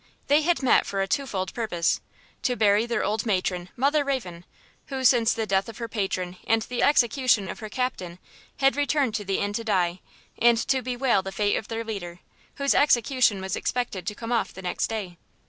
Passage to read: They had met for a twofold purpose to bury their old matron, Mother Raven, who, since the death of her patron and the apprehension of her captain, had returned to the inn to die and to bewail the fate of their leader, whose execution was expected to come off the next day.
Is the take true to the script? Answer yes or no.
no